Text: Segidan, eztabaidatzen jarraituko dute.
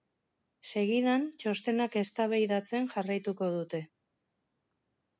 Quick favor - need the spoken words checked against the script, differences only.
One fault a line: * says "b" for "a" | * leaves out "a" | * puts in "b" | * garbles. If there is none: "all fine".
* puts in "txostenak"